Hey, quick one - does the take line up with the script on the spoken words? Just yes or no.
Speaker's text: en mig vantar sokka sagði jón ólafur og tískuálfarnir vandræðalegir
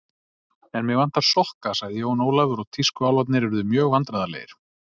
no